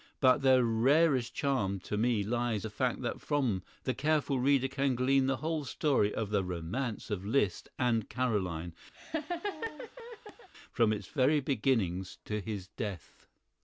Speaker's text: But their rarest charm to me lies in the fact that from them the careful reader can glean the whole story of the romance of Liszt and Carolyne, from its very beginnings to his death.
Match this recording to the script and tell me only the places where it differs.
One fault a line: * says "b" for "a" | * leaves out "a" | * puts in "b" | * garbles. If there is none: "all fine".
* leaves out "in"
* leaves out "them"